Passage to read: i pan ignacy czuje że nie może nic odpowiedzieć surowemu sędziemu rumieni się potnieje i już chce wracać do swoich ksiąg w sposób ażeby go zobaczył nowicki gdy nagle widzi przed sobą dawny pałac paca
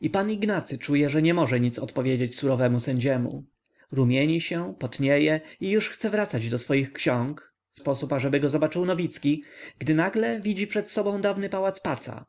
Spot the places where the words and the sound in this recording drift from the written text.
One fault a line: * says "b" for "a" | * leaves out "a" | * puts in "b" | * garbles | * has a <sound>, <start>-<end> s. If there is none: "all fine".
all fine